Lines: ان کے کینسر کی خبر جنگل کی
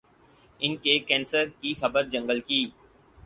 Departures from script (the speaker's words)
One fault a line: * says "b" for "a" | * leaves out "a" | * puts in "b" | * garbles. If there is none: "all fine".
all fine